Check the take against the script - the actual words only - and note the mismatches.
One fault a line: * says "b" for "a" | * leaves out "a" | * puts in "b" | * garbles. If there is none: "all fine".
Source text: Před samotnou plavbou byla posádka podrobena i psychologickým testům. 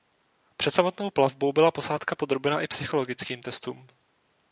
all fine